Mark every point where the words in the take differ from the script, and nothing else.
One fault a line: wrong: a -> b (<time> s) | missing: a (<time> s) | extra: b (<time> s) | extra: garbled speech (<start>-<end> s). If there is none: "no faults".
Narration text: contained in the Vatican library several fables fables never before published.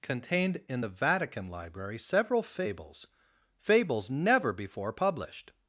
no faults